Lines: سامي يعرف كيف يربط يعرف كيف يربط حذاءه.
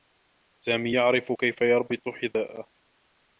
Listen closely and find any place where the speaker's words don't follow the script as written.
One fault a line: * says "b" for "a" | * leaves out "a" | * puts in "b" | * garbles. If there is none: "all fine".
* leaves out "يعرف كيف يربط"